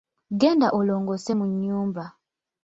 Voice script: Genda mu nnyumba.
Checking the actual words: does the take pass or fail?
fail